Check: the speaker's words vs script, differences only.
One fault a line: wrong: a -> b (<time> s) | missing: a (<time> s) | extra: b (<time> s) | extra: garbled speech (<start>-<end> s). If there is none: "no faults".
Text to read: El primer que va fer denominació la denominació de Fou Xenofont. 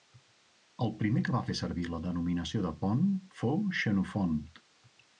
wrong: denominació -> servir (1.6 s)
extra: Pont (2.8 s)